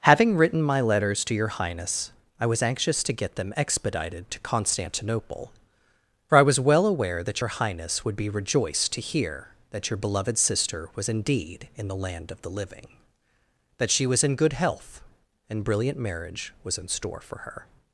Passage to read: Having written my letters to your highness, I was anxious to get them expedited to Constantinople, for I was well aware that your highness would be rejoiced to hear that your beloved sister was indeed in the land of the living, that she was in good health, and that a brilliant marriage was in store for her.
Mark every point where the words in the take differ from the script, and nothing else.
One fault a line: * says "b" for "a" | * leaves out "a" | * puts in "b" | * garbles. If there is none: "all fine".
* leaves out "that a"